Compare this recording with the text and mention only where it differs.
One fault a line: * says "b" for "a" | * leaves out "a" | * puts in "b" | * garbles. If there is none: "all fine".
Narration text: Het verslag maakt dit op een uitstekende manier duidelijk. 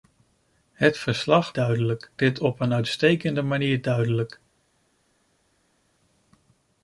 * says "duidelijk" for "maakt"